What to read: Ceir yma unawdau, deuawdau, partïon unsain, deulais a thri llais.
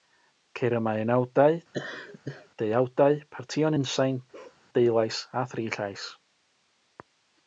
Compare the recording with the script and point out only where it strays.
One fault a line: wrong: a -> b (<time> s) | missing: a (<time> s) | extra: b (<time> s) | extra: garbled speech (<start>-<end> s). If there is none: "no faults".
no faults